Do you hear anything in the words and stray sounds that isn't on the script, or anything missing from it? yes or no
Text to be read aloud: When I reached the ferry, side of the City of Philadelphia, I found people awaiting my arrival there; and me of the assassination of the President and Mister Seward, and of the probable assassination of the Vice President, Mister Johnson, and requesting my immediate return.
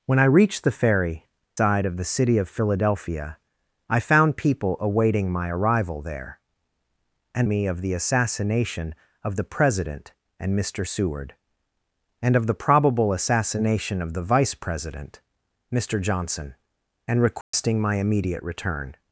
yes